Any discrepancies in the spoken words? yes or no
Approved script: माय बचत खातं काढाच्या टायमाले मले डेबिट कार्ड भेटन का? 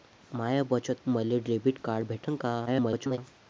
yes